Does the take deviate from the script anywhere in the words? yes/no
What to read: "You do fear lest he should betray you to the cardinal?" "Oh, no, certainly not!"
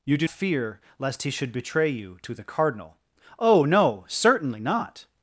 no